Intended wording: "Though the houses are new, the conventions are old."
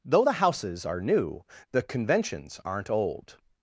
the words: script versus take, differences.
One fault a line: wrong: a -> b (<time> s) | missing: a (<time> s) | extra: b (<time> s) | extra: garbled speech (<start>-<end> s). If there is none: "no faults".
wrong: are -> aren't (2.6 s)